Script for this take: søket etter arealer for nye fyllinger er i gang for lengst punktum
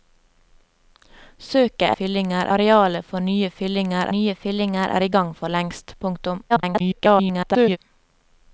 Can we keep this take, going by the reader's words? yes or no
no